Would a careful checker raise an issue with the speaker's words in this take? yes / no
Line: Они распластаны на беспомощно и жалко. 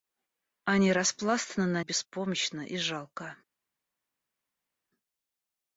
no